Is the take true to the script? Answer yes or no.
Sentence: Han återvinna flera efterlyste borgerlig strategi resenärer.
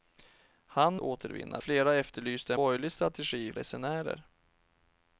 yes